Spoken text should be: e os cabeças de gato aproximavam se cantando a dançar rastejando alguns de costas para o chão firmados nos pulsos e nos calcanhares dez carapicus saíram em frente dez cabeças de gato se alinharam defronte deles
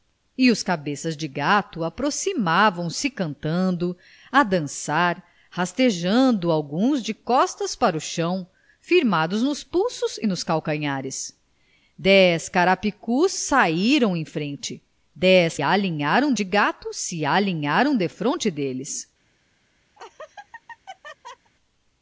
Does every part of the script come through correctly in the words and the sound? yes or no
no